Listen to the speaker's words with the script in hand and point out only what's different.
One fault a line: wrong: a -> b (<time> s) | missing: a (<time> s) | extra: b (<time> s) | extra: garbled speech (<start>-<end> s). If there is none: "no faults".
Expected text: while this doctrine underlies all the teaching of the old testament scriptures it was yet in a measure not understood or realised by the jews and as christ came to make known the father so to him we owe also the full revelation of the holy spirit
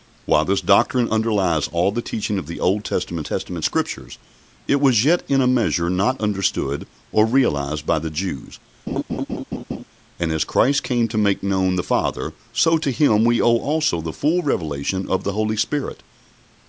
extra: testament (3.3 s)